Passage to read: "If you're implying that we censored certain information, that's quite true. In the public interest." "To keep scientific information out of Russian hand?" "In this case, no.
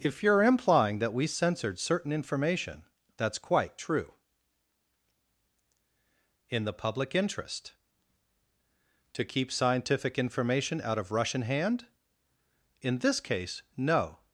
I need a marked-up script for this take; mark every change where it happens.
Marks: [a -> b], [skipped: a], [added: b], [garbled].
"If you're implying that we censored certain information, that's quite true. In the public interest." "To keep scientific information out of Russian hand?" "In this case, no.